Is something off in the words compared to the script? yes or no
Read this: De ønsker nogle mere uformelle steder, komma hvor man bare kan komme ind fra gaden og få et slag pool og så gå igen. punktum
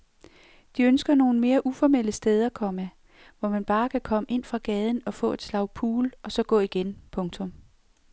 no